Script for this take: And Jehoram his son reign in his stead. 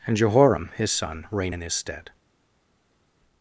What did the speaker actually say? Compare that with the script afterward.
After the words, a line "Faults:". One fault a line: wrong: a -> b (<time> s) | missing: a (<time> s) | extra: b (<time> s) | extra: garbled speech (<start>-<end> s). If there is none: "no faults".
And Jehoram his son reign in his stead.
Faults:
no faults